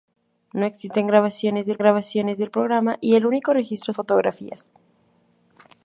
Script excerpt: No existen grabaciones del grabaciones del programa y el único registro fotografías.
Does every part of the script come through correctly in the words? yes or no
yes